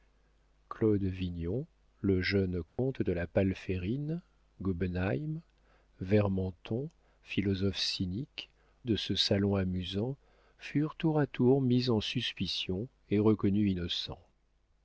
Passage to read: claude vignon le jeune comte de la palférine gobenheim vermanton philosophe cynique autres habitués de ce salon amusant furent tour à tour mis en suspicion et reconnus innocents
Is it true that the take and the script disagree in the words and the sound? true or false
true